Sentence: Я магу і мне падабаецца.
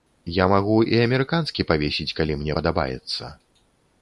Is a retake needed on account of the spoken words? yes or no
yes